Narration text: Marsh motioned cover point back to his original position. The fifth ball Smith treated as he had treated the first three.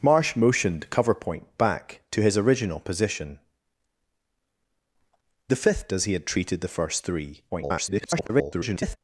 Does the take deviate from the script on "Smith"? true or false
true